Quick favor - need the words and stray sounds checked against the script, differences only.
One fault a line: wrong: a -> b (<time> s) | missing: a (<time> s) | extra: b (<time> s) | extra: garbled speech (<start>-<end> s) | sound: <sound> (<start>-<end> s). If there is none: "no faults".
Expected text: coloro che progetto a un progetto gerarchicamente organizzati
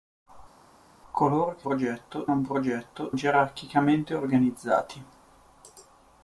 no faults